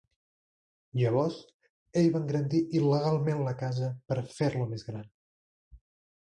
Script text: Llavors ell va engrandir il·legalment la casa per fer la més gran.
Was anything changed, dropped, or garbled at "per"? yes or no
no